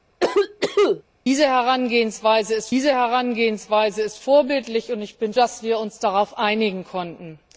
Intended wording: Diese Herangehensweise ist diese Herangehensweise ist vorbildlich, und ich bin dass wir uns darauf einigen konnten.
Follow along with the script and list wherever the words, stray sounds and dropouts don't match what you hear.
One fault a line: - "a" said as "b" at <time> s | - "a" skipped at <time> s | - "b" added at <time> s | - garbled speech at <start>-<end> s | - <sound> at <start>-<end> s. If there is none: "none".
- cough at 0.2-1.0 s